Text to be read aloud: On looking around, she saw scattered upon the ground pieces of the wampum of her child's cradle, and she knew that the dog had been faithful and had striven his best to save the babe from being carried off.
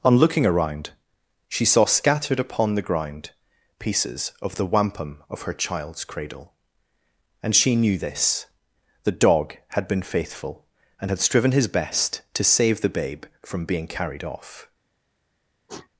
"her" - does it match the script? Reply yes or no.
yes